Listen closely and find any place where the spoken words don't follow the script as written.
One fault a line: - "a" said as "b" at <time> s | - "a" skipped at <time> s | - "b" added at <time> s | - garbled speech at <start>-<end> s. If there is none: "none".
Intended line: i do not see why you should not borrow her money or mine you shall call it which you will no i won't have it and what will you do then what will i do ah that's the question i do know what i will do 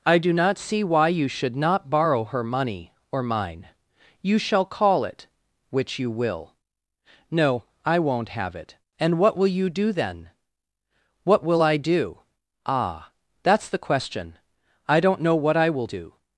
- "do" said as "don't" at 15.0 s